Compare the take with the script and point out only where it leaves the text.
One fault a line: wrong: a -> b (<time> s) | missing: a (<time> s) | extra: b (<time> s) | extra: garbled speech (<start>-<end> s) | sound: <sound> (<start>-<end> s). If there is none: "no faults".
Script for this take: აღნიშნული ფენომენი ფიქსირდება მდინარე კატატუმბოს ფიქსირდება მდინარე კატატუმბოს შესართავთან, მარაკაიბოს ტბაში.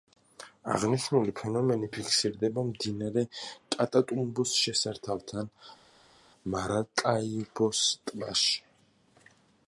missing: ფიქსირდება მდინარე კატატუმბოს (4.5 s)